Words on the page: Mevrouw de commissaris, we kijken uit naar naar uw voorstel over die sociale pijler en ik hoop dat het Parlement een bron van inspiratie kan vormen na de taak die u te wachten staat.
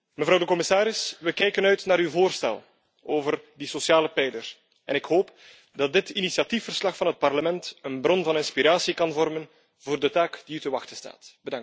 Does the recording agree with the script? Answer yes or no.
no